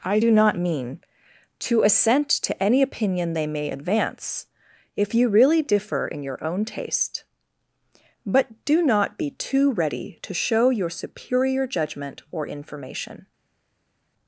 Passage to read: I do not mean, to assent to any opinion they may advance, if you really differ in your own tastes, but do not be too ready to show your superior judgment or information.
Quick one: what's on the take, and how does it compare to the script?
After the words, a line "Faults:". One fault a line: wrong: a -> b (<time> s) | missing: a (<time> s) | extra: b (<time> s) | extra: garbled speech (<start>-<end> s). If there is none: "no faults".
I do not mean, to assent to any opinion they may advance, if you really differ in your own taste, but do not be too ready to show your superior judgment or information.
Faults:
wrong: tastes -> taste (6.6 s)